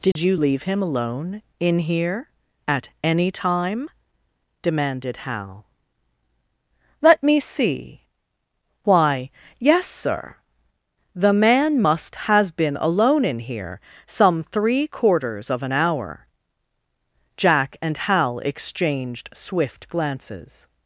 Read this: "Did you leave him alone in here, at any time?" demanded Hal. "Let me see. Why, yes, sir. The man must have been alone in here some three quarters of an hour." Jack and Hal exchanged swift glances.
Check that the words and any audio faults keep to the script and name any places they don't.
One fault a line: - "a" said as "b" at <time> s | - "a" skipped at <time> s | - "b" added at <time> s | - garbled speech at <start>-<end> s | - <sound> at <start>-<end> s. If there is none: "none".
- dropout at 0.1-0.2 s
- "have" said as "has" at 12.3 s